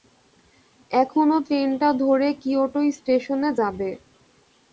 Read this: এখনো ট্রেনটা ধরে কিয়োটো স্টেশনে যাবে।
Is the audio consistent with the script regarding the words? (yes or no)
yes